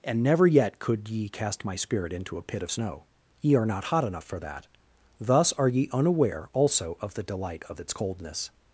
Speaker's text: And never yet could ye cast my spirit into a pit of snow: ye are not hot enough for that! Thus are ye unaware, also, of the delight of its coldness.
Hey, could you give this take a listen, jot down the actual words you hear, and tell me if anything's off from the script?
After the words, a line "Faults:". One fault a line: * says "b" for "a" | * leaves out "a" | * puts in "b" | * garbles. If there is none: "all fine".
And never yet could ye cast my spirit into a pit of snow: ye are not hot enough for that! Thus are ye unaware, also, of the delight of its coldness.
Faults:
all fine